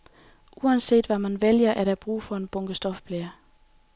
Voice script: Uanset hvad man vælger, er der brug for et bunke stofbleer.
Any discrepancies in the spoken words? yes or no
yes